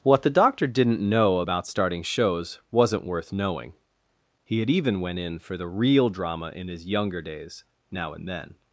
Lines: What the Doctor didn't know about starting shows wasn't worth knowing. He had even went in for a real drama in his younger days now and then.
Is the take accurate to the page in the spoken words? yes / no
no